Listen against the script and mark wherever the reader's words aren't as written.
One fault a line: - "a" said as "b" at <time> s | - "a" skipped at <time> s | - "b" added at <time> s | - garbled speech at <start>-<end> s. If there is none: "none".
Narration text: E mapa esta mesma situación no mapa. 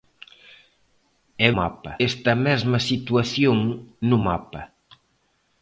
none